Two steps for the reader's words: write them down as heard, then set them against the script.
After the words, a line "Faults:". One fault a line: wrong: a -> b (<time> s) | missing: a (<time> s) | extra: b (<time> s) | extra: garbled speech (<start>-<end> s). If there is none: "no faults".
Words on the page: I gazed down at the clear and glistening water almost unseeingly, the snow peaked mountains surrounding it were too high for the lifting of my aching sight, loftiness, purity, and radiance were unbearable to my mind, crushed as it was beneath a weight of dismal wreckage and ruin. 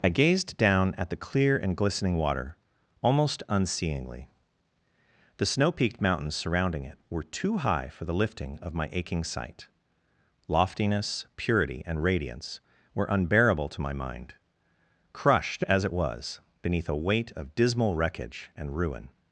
I gazed down at the clear and glistening water almost unseeingly, the snow peaked mountains surrounding it were too high for the lifting of my aching sight, loftiness, purity, and radiance were unbearable to my mind, crushed as it was beneath a weight of dismal wreckage and ruin.
Faults:
no faults